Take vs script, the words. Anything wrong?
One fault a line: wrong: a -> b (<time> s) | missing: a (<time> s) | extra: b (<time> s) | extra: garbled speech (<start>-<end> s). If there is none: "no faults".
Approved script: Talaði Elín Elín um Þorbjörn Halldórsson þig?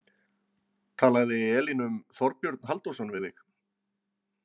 missing: Elín (1.9 s)
extra: við (3.1 s)